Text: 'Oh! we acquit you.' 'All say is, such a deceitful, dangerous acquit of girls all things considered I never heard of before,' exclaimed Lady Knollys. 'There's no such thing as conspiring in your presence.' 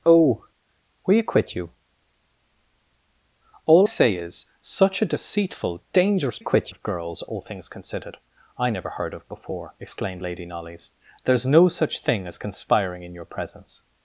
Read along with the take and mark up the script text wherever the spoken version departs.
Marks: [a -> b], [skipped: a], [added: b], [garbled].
'Oh! we acquit you.' 'All say is, such a deceitful, dangerous acquit of girls all things considered I never heard of before,' exclaimed Lady Knollys. 'There's no such thing as conspiring in your presence.'